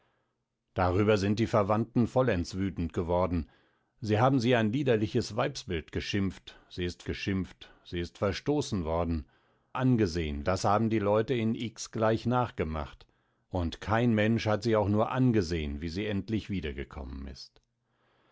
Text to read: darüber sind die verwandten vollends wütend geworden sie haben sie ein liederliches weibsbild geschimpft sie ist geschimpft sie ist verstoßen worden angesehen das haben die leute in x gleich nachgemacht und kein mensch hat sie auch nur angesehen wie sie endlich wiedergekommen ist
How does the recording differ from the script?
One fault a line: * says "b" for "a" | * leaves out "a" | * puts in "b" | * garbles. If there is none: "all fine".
all fine